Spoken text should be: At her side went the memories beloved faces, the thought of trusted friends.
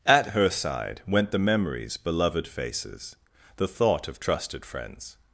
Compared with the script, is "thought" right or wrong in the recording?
right